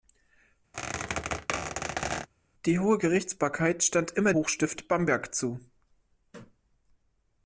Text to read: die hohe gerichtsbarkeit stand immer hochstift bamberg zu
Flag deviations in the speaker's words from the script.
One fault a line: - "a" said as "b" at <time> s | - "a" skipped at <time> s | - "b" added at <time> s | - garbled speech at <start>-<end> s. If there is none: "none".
none